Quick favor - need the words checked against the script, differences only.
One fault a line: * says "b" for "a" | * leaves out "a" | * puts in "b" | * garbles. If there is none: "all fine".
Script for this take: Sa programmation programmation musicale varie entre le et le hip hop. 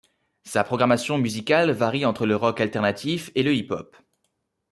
* leaves out "programmation"
* puts in "rock alternatif"